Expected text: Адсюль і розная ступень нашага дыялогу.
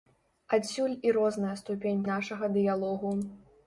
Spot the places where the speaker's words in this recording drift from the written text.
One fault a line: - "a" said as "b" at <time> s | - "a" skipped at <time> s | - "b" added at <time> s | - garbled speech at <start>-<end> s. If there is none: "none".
none